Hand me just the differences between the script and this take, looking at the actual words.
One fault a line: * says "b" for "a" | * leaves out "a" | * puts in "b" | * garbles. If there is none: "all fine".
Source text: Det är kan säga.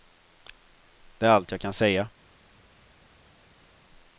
* puts in "allt jag"